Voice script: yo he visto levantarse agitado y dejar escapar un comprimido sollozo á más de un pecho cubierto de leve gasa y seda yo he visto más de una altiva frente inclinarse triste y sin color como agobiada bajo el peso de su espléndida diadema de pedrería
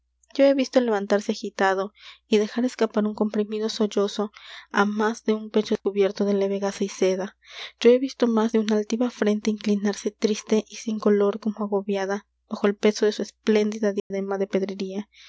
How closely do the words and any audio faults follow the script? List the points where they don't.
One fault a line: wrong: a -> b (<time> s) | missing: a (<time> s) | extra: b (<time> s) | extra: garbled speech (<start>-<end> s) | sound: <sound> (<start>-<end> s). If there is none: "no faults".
sound: dropout (14.0-14.1 s)